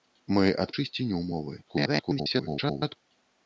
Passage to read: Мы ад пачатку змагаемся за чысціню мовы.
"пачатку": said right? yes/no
no